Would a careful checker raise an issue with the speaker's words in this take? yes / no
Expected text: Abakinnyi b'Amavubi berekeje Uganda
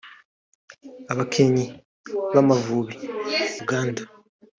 yes